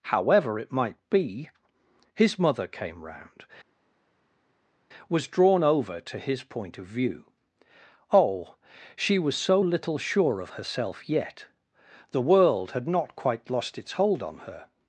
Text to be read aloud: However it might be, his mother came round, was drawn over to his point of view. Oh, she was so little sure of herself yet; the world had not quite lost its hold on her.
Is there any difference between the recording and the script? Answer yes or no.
no